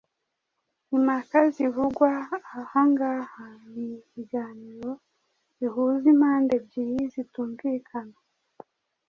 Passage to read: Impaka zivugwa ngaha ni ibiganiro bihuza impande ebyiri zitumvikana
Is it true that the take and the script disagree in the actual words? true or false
true